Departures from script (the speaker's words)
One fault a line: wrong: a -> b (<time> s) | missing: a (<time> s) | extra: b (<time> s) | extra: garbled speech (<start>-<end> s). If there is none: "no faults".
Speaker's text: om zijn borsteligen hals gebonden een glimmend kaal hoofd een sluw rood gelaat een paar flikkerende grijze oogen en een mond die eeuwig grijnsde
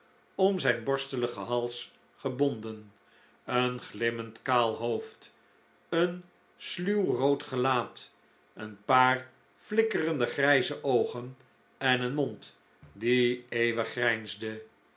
no faults